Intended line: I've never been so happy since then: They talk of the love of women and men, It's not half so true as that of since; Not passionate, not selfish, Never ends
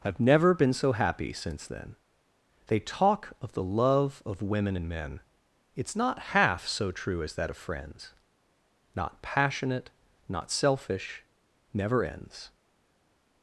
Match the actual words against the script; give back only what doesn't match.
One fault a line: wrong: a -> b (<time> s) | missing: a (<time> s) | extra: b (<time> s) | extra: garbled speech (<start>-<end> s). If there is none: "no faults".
wrong: since -> friends (7.6 s)